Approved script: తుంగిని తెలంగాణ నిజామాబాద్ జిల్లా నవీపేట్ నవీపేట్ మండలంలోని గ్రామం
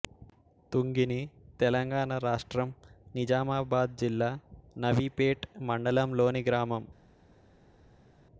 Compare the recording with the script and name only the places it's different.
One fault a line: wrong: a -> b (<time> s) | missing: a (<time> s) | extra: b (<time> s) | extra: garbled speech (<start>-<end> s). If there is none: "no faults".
extra: రాష్ట్రం (2.2 s)
missing: నవీపేట్ (5.5 s)